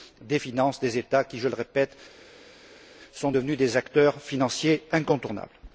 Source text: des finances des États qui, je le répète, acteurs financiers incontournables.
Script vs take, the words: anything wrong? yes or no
yes